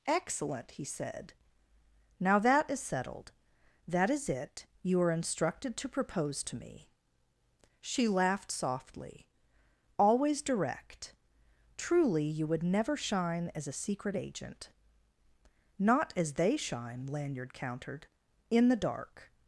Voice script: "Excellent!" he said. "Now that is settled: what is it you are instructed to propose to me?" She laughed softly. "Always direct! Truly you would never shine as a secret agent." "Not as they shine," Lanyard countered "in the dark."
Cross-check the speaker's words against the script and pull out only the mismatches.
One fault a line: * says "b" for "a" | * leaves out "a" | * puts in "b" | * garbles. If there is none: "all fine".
* says "that" for "what"